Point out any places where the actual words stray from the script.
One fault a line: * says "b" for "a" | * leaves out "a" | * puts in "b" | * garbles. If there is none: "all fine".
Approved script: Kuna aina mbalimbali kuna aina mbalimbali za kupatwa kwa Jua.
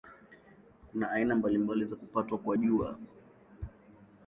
* leaves out "kuna aina mbalimbali"